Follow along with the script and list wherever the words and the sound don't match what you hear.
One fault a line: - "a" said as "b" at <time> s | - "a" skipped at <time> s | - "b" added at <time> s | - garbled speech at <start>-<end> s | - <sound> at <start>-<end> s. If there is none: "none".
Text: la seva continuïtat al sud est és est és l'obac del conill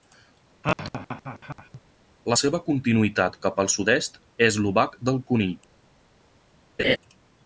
- laugh at 0.6-1.8 s
- "cap" added at 3.5 s
- "est és" skipped at 4.6 s
- laugh at 6.8-7.0 s